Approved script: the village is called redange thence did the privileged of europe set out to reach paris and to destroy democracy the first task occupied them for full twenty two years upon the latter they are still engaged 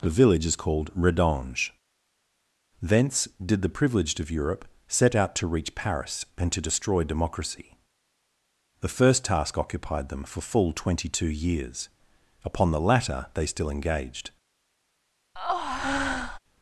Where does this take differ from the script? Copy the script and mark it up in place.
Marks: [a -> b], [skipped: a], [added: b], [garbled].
the village is called redange thence did the privileged of europe set out to reach paris and to destroy democracy the first task occupied them for full twenty two years upon the latter they [skipped: are] still engaged